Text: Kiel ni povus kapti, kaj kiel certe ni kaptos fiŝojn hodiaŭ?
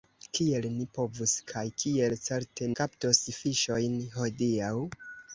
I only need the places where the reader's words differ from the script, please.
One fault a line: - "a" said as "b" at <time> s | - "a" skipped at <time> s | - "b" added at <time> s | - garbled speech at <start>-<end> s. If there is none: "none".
- "kapti" skipped at 1.3 s
- "ni" skipped at 2.7 s